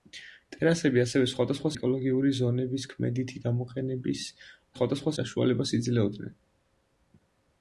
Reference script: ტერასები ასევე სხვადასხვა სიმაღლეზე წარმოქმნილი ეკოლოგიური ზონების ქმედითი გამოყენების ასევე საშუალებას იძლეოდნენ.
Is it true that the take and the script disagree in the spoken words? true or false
true